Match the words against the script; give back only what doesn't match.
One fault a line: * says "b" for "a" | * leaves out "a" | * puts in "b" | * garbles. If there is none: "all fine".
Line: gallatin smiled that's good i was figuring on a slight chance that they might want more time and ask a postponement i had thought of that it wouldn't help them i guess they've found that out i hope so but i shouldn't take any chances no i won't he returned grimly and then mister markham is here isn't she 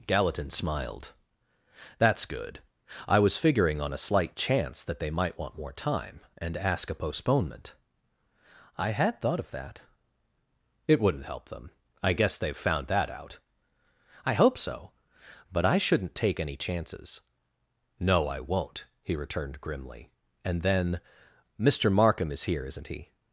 * says "he" for "she"